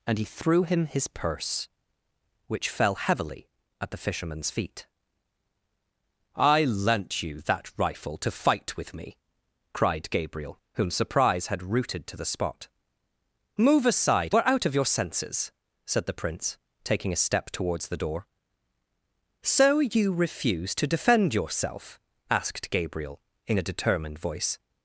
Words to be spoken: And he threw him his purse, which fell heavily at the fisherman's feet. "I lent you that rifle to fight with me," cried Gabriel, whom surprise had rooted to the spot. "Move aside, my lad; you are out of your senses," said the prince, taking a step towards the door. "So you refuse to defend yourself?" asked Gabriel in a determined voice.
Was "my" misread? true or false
true